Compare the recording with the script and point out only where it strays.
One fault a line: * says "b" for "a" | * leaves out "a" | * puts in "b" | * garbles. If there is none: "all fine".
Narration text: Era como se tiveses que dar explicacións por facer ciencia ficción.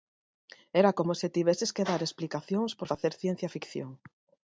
all fine